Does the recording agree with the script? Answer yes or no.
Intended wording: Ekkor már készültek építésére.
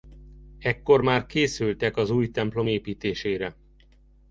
no